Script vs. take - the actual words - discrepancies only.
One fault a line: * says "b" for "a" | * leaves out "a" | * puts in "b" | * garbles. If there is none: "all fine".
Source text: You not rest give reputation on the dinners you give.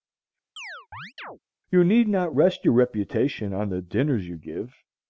* puts in "need"
* says "your" for "give"